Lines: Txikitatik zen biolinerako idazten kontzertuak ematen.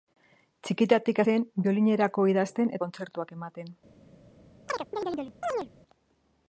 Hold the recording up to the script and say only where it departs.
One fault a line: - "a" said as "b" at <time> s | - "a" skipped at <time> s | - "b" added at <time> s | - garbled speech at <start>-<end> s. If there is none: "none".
none